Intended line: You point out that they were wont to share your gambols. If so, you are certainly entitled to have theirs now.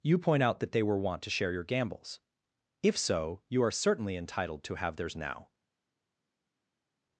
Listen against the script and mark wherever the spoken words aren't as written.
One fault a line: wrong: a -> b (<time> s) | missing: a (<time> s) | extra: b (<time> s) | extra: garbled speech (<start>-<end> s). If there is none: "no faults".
no faults